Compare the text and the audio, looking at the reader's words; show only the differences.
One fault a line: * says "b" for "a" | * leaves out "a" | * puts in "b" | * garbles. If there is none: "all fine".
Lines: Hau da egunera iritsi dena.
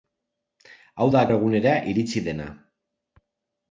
all fine